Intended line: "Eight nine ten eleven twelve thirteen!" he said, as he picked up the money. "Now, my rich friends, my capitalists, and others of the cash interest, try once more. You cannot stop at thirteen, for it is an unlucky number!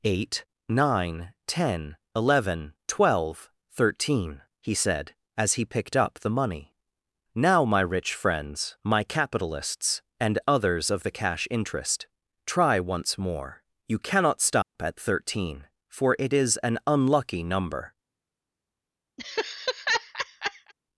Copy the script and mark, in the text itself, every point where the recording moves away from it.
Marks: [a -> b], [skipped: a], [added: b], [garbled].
"Eight nine ten eleven twelve thirteen!" he said, as he picked up the money. "Now, my rich friends, my capitalists, and others of the cash interest, try once more. You cannot stop at thirteen, for it is an unlucky number!